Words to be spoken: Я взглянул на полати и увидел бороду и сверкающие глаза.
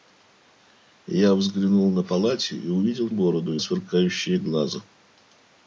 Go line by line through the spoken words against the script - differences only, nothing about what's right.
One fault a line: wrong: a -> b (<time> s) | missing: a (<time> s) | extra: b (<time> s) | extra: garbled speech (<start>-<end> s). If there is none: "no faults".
no faults